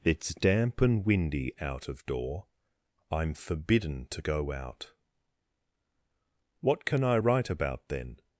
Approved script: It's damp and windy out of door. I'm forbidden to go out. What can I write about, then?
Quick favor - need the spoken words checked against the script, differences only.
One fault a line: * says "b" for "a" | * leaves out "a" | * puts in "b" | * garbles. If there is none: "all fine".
all fine